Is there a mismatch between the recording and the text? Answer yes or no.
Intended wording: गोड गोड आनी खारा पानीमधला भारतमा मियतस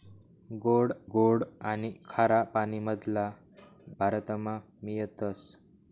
no